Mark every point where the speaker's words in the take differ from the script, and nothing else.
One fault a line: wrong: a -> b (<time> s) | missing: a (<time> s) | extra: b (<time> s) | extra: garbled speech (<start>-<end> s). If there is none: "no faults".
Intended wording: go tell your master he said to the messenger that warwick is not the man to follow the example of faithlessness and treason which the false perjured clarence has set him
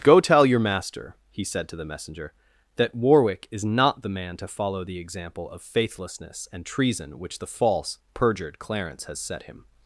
no faults